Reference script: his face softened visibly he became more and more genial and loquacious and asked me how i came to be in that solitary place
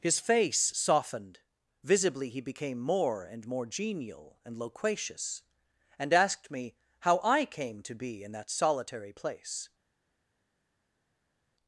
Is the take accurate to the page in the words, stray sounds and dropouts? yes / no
yes